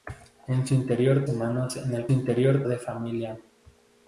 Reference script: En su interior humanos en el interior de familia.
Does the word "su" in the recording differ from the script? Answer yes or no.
no